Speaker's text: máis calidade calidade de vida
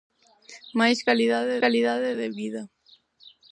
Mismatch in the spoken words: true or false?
false